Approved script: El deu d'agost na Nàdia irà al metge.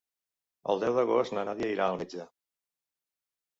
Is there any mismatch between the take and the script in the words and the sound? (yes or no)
no